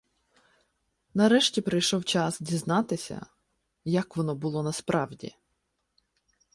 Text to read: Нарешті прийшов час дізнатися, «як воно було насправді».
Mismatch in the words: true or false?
false